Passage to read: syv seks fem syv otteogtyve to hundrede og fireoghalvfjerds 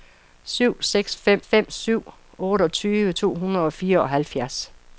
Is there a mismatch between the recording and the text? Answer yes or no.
yes